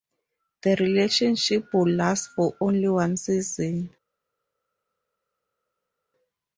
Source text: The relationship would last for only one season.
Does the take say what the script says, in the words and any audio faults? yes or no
yes